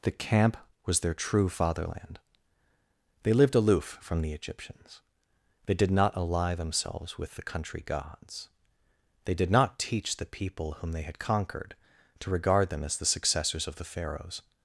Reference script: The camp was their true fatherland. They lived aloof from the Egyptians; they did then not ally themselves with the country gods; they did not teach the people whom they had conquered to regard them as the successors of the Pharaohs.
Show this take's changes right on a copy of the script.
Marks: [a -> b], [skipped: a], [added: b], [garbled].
The camp was their true fatherland. They lived aloof from the Egyptians; they did [skipped: then] not ally themselves with the country gods; they did not teach the people whom they had conquered to regard them as the successors of the Pharaohs.